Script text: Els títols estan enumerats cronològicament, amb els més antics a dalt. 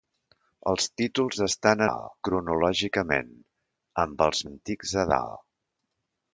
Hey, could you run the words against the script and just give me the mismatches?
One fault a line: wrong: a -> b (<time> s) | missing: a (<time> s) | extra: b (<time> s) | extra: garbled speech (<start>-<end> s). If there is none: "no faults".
wrong: enumerats -> dalt (1.9 s)
missing: més (4.4 s)